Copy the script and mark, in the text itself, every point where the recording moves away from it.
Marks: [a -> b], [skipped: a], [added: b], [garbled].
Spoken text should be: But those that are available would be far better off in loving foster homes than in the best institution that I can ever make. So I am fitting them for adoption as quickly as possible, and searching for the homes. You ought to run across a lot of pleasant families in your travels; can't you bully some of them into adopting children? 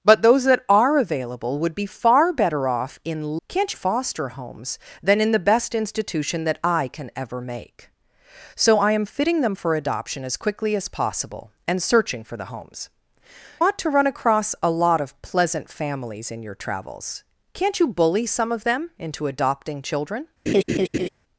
But those that are available would be far better off in [loving -> can't] foster homes than in the best institution that I can ever make. So I am fitting them for adoption as quickly as possible, and searching for the homes. [skipped: You] ought to run across a lot of pleasant families in your travels; can't you bully some of them into adopting children?